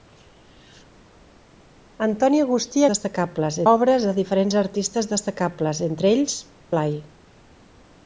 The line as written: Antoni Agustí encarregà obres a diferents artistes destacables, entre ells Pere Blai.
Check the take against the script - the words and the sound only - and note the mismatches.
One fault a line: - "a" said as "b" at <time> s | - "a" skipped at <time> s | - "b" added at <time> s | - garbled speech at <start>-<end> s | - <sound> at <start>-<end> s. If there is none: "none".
- "encarregà" said as "destacables" at 2.9 s
- "Pere" skipped at 6.4 s